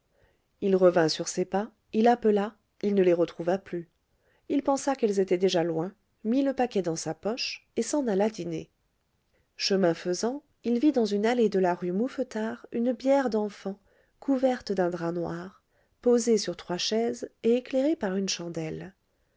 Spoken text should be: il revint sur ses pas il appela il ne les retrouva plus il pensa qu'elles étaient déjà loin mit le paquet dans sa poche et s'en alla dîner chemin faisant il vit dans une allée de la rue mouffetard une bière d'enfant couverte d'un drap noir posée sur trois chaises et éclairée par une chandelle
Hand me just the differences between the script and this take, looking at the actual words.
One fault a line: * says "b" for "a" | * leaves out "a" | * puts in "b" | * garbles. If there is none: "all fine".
all fine